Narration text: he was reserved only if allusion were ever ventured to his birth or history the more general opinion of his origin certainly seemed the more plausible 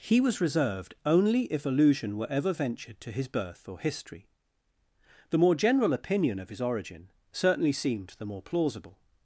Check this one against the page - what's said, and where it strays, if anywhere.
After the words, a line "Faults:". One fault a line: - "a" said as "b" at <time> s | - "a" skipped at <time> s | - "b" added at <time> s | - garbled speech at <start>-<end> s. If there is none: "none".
he was reserved only if allusion were ever ventured to his birth or history the more general opinion of his origin certainly seemed the more plausible
Faults:
none